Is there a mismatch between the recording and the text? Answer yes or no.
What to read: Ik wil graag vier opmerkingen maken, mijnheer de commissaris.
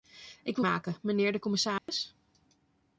yes